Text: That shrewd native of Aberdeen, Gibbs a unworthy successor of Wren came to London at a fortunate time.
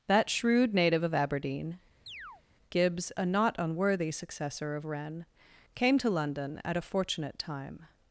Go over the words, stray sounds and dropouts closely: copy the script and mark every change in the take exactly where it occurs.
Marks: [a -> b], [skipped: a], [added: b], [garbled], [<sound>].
That shrewd native of Aberdeen, [chirp] Gibbs a [added: not] unworthy successor of Wren came to London at a fortunate time.